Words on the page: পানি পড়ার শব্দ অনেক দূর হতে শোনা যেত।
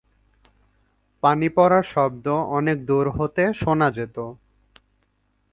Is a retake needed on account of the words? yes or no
no